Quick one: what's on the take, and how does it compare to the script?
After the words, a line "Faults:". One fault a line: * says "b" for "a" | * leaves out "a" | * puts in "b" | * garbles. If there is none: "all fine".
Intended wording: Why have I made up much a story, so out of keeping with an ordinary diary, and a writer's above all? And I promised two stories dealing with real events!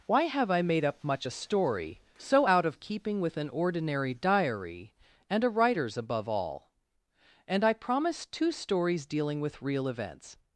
Why have I made up much a story, so out of keeping with an ordinary diary, and a writer's above all? And I promised two stories dealing with real events!
Faults:
all fine